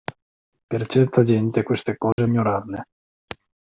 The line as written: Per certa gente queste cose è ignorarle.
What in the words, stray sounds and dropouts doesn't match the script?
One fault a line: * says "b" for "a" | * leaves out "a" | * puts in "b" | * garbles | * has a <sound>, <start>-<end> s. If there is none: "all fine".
* has a dropout, 2.1-2.2 s